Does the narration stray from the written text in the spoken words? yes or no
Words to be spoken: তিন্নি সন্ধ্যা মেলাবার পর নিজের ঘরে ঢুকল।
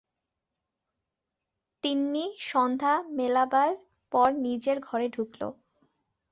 no